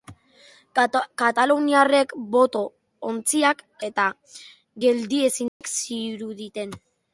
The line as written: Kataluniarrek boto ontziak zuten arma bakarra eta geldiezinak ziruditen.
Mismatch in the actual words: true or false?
true